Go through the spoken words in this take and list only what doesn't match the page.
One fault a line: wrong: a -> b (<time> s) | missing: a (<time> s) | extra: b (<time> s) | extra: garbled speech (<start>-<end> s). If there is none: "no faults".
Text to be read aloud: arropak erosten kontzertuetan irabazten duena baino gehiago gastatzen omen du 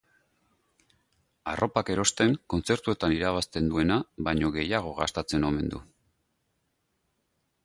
no faults